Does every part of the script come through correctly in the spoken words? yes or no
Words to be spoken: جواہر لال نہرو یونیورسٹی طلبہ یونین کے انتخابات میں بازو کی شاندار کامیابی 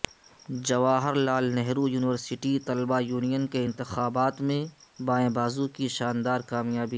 no